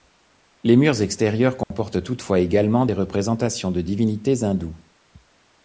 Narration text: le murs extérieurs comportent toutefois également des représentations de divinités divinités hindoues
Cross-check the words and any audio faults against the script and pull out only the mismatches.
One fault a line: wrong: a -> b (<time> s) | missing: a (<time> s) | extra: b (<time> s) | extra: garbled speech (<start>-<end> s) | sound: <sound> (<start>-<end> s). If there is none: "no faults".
wrong: le -> les (0.6 s)
sound: dropout (1.6-1.7 s)
missing: divinités (4.4 s)